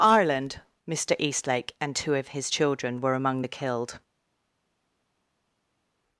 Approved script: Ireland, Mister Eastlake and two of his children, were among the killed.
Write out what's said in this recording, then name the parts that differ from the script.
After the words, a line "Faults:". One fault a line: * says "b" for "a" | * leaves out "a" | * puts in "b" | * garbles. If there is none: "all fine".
Ireland, Mister Eastlake and two of his children, were among the killed.
Faults:
all fine